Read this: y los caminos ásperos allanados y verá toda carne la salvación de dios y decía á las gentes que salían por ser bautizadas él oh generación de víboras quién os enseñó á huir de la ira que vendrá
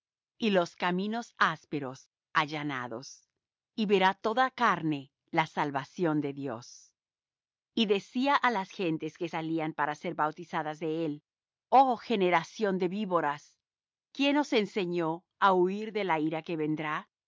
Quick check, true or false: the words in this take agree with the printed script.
false